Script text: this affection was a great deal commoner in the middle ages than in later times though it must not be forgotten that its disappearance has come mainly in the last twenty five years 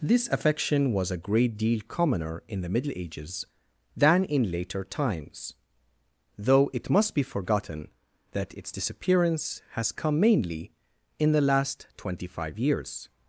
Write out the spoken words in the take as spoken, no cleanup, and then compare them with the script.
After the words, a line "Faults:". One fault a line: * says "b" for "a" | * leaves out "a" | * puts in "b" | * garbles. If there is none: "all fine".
this affection was a great deal commoner in the middle ages than in later times though it must be forgotten that its disappearance has come mainly in the last twenty five years
Faults:
* leaves out "not"